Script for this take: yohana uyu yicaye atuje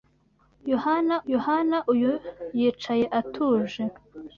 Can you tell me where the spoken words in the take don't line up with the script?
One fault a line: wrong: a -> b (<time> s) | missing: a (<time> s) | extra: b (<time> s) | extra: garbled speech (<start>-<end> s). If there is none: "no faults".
extra: yohana (1.3 s)